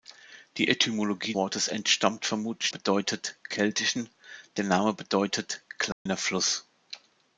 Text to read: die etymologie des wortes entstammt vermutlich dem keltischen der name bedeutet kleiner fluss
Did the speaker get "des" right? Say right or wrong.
wrong